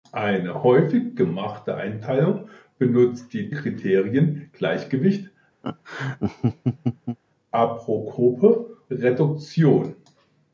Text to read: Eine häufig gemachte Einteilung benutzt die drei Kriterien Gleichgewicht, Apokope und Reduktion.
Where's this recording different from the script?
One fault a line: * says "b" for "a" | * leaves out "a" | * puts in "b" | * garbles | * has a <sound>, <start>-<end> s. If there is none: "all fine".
* leaves out "drei"
* has a laugh, 5.6-7.2 s
* leaves out "und"